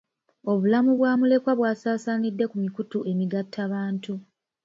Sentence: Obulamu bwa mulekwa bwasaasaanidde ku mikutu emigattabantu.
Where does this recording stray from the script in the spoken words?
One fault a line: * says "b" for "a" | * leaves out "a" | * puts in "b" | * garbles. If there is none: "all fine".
all fine